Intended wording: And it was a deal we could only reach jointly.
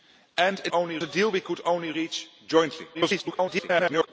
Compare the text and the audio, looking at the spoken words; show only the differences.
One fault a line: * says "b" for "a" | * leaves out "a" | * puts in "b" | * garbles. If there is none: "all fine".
* says "only" for "was"
* garbles